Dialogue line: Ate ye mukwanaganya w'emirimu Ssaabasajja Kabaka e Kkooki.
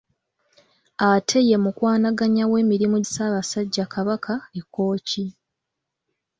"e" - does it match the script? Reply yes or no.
yes